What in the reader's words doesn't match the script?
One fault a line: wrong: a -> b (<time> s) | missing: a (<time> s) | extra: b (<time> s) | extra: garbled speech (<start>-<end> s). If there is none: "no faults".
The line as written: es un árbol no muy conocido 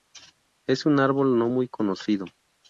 no faults